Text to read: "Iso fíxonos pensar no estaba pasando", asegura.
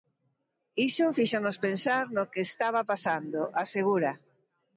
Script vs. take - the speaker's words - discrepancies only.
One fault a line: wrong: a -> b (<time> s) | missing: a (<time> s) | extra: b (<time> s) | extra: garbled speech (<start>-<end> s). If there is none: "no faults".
extra: que (2.3 s)